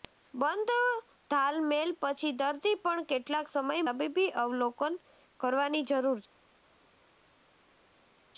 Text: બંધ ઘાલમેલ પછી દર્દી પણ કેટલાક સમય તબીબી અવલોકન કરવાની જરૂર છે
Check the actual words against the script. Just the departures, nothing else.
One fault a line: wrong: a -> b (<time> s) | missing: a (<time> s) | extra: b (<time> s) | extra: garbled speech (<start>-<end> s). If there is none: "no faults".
no faults